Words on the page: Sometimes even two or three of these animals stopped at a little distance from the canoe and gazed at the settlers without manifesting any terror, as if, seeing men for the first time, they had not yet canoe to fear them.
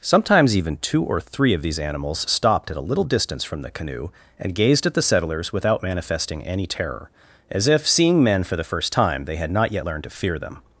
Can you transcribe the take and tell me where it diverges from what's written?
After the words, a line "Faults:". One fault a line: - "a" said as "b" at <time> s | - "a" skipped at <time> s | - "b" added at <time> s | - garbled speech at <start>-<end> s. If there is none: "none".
Sometimes even two or three of these animals stopped at a little distance from the canoe and gazed at the settlers without manifesting any terror, as if, seeing men for the first time, they had not yet learned to fear them.
Faults:
- "canoe" said as "learned" at 9.8 s